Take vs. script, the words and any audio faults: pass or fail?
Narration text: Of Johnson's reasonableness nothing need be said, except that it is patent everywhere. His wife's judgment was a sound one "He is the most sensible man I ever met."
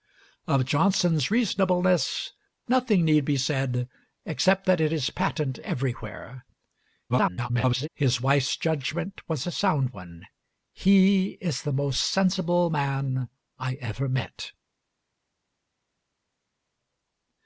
fail